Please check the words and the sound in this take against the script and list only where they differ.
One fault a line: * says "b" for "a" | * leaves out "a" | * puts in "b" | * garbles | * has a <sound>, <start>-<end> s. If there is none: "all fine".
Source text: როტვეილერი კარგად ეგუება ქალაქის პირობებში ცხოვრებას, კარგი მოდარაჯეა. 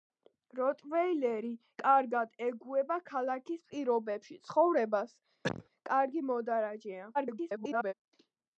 * has a cough, 5.4-5.7 s
* garbles